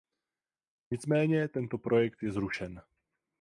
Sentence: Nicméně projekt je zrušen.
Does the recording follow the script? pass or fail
fail